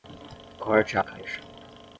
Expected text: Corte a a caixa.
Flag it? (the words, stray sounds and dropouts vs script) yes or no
no